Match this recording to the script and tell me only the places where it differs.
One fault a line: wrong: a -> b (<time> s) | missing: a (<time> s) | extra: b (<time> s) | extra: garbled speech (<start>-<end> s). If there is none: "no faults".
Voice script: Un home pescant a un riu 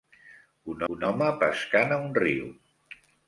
extra: un (0.9 s)